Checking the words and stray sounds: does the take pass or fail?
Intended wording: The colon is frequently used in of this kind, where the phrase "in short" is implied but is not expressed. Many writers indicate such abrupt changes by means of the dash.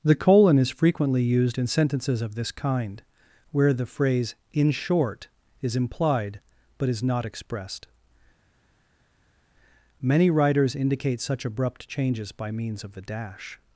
fail